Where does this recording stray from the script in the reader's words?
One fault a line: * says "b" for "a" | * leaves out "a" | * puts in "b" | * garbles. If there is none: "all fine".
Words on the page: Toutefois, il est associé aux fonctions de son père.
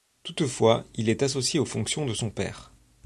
all fine